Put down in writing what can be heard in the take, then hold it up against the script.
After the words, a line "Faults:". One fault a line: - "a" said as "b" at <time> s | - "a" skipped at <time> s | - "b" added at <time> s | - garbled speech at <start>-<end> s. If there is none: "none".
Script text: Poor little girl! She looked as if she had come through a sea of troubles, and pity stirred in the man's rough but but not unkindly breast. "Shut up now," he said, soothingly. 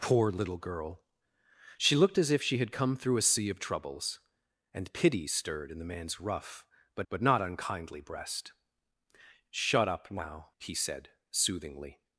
Poor little girl! She looked as if she had come through a sea of troubles, and pity stirred in the man's rough but but not unkindly breast. "Shut up now," he said, soothingly.
Faults:
none